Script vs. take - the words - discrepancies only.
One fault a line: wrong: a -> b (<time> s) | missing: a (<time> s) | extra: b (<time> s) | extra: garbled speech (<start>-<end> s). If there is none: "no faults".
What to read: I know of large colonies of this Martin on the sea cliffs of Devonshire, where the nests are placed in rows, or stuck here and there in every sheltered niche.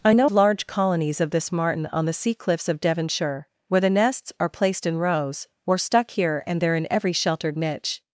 missing: of (0.3 s)